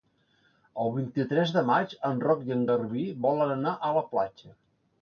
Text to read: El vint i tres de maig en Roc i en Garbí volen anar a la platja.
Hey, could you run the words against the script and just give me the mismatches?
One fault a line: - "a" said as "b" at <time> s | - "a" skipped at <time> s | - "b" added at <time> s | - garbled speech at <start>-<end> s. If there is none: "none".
none